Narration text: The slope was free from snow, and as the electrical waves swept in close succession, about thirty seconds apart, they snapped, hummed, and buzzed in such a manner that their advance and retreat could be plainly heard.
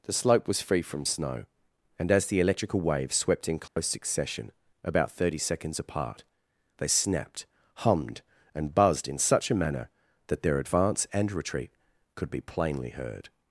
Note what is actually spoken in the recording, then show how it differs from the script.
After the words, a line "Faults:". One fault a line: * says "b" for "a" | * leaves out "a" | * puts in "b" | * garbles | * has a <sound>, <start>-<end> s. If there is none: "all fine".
The slope was free from snow, and as the electrical waves swept in close succession, about thirty seconds apart, they snapped, hummed, and buzzed in such a manner that their advance and retreat could be plainly heard.
Faults:
* has a dropout, 3.7-3.8 s